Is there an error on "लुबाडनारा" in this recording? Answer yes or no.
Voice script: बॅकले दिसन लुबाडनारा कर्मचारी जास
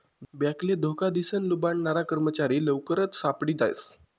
no